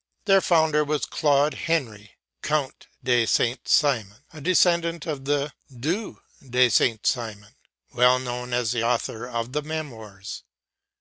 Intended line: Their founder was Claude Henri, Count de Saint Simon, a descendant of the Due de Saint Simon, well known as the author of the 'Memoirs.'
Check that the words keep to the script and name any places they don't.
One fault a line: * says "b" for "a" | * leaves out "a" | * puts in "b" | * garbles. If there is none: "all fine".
all fine